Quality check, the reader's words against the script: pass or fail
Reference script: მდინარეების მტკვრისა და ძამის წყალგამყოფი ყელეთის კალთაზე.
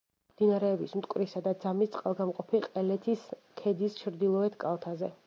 fail